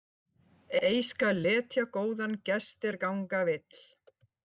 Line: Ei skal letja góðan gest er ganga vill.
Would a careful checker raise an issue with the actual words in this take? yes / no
no